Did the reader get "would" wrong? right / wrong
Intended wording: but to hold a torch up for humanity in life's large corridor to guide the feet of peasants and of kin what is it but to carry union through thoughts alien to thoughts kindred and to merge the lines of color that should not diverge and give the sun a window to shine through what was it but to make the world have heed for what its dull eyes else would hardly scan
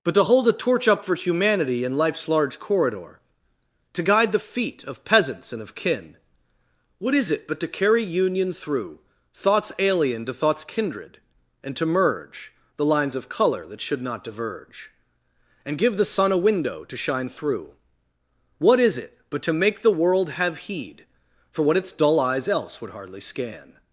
right